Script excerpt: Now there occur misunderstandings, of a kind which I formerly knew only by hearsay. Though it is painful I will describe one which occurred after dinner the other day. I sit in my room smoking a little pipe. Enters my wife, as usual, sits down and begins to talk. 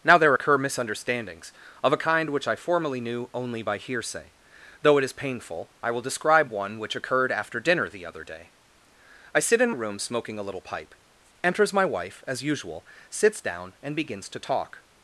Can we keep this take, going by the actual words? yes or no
no